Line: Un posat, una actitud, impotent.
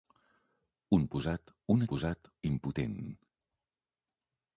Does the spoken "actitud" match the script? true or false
false